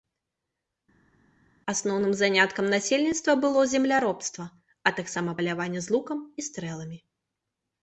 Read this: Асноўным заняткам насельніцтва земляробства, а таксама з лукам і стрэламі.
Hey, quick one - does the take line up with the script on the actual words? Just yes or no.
no